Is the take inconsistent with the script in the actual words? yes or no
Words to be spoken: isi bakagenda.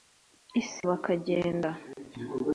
no